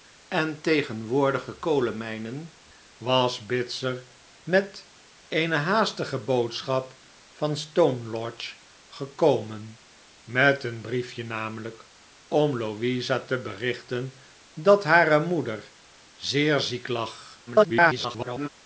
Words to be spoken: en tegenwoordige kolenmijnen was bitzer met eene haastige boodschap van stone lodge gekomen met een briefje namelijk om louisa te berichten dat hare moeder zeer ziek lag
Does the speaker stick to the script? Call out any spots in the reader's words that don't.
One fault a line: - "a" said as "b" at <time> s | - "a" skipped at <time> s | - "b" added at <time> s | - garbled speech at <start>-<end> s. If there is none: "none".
- garbled speech at 17.5-18.5 s